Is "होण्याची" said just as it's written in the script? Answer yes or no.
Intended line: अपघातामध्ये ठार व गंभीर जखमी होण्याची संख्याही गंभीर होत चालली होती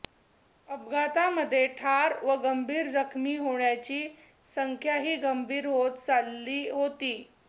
yes